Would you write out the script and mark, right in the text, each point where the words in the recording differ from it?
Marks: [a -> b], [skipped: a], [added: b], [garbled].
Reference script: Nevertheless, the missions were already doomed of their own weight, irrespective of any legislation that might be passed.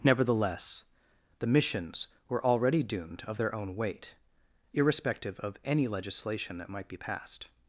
Nevertheless, the missions were already doomed of their own weight, irrespective of any legislation that might be passed.